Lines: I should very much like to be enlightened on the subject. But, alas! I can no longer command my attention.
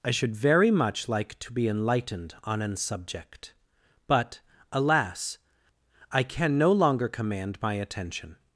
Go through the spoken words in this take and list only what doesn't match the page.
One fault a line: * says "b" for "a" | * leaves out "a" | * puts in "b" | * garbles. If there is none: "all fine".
* says "an" for "the"